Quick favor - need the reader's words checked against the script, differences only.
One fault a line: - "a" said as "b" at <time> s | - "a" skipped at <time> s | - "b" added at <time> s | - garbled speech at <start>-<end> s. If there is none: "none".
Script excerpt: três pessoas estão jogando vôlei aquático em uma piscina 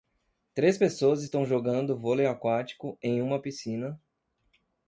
none